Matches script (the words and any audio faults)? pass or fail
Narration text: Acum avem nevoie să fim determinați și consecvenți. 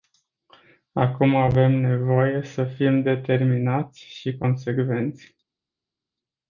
pass